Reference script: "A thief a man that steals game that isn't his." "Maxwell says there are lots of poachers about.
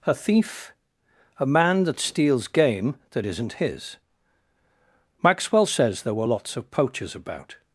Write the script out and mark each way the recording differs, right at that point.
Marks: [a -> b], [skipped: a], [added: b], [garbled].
"A thief a man that steals game that isn't his." "Maxwell says there [are -> were] lots of poachers about.